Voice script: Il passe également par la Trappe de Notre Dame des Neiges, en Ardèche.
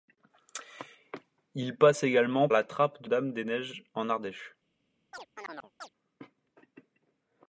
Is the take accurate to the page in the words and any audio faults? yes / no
no